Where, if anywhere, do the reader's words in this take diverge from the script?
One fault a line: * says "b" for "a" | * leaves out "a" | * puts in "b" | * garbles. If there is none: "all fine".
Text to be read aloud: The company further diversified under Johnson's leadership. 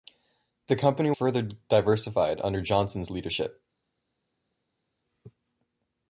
all fine